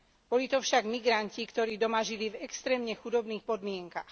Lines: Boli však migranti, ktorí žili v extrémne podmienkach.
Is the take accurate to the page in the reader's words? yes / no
no